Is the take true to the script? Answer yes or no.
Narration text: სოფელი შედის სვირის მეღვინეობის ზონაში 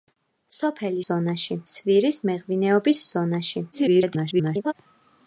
no